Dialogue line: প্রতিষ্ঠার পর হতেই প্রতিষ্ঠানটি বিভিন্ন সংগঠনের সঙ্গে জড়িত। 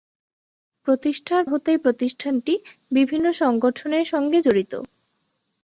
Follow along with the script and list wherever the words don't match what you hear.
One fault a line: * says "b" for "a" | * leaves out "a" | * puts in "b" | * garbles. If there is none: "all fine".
* leaves out "পর"